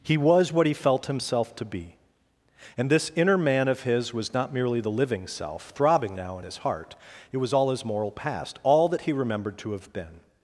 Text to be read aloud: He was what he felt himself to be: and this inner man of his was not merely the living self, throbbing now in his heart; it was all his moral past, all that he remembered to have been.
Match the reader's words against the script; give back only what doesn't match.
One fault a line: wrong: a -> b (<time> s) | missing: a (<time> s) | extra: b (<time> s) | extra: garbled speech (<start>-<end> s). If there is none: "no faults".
no faults